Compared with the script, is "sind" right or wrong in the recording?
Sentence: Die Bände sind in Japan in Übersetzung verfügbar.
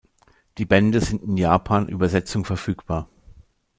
right